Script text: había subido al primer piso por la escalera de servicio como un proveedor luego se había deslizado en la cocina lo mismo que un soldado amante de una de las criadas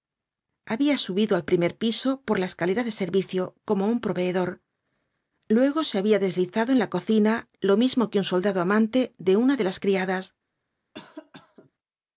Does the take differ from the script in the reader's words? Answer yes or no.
no